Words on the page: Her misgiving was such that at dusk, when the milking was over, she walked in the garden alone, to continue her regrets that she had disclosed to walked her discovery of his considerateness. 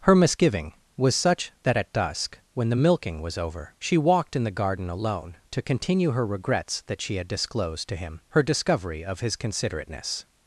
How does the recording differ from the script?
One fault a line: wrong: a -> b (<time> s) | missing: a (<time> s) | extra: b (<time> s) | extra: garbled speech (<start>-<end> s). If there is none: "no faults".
wrong: walked -> him (8.0 s)